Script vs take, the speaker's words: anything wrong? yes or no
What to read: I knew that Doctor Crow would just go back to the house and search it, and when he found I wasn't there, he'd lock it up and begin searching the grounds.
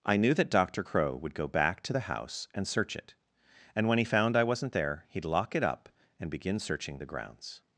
yes